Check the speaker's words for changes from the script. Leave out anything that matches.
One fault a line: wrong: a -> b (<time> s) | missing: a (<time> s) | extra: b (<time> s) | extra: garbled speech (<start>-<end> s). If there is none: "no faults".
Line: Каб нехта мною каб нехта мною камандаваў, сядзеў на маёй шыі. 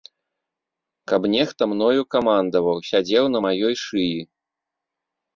missing: каб нехта мною (2.0 s)